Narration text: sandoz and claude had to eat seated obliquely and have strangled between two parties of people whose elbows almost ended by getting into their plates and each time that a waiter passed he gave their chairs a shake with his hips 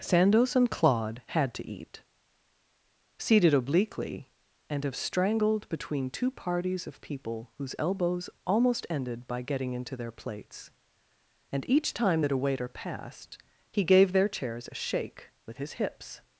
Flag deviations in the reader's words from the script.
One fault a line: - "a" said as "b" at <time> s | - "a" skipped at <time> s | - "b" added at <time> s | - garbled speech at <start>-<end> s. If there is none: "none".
none